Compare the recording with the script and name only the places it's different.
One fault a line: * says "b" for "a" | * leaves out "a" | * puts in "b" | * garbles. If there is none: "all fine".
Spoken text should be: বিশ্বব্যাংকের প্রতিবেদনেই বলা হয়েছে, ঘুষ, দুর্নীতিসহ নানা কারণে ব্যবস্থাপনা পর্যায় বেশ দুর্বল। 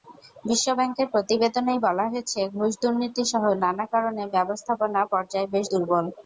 all fine